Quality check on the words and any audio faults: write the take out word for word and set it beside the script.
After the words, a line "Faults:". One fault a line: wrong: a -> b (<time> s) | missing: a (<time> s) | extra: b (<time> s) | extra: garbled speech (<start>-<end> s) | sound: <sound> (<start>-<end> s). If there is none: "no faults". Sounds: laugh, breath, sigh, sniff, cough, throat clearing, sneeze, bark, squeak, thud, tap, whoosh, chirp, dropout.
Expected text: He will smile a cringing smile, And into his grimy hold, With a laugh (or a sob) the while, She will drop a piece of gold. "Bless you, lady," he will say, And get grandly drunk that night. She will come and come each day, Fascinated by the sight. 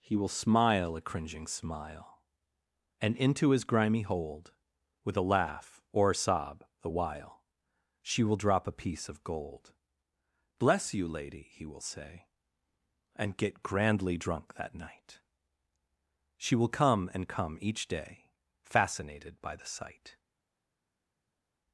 He will smile a cringing smile, And into his grimy hold, With a laugh (or a sob) the while, She will drop a piece of gold. "Bless you, lady," he will say, And get grandly drunk that night. She will come and come each day, Fascinated by the sight.
Faults:
no faults